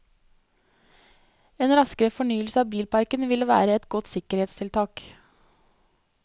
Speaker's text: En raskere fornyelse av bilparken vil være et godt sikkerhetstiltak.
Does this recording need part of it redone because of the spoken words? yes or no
no